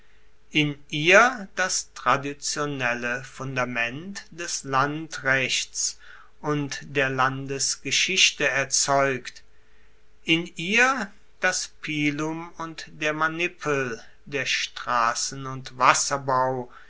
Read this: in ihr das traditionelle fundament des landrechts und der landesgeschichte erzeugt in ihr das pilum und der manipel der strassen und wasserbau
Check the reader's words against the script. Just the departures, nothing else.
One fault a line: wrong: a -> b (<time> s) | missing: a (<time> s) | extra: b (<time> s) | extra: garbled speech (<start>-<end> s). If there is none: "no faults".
no faults